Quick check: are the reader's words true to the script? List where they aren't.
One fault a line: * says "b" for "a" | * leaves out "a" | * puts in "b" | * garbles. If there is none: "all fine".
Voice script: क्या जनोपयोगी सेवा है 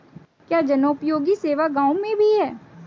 * puts in "गाँव में भी"